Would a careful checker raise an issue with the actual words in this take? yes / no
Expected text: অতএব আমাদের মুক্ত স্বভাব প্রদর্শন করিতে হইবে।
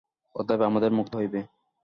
yes